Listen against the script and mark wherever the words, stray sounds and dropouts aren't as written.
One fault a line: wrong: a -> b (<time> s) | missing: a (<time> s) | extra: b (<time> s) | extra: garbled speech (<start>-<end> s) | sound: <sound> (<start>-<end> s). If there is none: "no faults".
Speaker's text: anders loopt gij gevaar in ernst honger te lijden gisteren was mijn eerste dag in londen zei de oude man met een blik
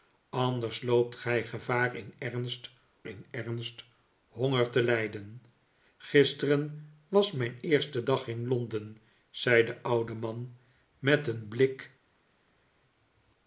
extra: in ernst (3.1 s)